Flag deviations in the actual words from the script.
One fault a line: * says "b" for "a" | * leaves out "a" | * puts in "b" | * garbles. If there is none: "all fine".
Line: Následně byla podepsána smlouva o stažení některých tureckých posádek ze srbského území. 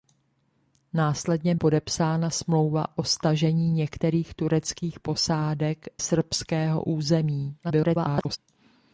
* leaves out "byla"
* leaves out "ze"
* garbles